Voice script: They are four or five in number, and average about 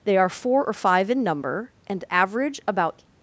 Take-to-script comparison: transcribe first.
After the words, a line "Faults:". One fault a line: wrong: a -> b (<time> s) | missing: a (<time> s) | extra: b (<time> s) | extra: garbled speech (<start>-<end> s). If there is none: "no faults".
They are four or five in number, and average about
Faults:
no faults